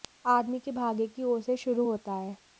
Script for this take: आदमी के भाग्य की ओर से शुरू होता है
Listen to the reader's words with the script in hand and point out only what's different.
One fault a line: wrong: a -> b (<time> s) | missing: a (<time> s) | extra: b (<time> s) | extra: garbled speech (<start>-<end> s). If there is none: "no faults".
no faults